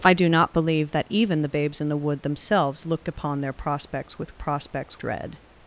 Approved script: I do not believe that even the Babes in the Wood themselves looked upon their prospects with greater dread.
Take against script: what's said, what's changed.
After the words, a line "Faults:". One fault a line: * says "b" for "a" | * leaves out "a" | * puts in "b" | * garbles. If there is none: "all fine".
I do not believe that even the Babes in the Wood themselves looked upon their prospects with prospects dread.
Faults:
* says "prospects" for "greater"